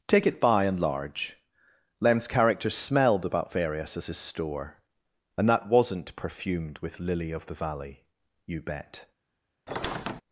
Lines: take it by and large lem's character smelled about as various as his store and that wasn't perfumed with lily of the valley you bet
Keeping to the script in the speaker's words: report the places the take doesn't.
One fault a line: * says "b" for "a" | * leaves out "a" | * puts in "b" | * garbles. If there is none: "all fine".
* leaves out "as"